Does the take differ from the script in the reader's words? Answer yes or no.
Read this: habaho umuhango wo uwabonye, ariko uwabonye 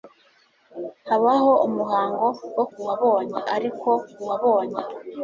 no